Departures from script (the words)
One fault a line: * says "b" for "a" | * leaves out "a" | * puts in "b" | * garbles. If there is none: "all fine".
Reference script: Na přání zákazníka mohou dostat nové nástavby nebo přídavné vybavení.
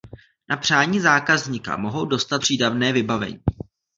* leaves out "nové nástavby nebo"